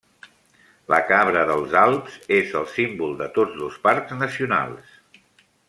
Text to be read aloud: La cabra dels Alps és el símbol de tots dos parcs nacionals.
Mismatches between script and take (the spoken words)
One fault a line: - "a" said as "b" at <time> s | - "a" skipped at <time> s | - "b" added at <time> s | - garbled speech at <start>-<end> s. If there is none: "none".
none